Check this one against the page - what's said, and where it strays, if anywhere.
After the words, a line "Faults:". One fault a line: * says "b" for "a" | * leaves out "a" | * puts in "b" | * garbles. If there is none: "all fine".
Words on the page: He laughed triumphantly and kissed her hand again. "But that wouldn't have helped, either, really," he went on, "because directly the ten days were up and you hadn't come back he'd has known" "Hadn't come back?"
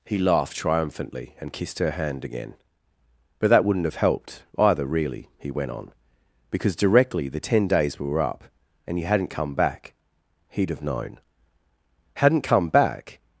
He laughed triumphantly and kissed her hand again. "But that wouldn't have helped, either, really," he went on, "because directly the ten days were up and you hadn't come back he'd have known" "Hadn't come back?"
Faults:
* says "have" for "has"